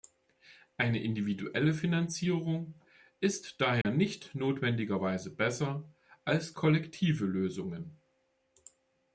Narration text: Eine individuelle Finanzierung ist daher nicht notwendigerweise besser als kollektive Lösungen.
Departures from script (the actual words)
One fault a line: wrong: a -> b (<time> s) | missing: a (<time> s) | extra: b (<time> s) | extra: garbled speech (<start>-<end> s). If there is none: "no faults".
no faults